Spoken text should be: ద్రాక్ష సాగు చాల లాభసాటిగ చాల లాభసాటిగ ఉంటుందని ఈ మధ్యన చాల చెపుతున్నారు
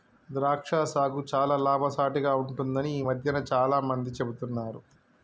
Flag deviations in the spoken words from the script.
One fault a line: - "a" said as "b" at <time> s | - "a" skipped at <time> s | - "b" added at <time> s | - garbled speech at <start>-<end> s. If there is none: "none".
- "చాల లాభసాటిగ" skipped at 2.3 s
- "మంది" added at 3.9 s